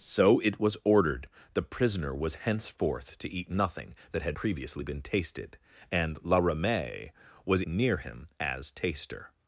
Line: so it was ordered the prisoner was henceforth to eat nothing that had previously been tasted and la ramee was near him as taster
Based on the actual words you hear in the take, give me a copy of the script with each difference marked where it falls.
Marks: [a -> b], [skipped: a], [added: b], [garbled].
so it was ordered the prisoner was henceforth to eat nothing that had previously been tasted and la ramee was near him as taster